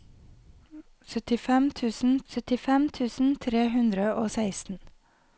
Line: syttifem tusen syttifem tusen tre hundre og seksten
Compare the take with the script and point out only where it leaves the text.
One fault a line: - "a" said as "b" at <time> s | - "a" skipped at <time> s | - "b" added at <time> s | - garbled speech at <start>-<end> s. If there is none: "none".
none